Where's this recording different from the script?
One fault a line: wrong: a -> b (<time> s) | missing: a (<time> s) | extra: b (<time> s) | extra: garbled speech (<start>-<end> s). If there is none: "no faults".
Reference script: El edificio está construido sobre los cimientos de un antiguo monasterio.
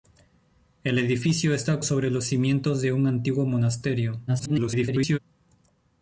missing: construido (1.8 s)
extra: garbled speech (4.3-5.2 s)